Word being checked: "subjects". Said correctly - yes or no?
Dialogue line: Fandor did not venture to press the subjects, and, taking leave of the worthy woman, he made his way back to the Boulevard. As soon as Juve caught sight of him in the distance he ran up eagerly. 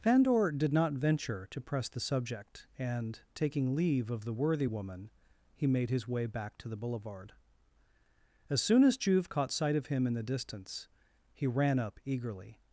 no